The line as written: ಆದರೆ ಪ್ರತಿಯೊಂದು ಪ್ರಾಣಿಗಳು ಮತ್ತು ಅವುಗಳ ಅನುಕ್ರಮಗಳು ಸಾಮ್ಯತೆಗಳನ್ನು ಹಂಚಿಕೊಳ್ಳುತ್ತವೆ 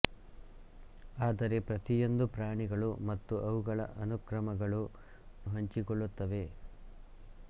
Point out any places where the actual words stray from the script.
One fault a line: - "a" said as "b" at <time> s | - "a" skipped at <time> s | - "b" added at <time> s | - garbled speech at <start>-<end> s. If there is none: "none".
- "ಸಾಮ್ಯತೆಗಳನ್ನು" skipped at 4.8 s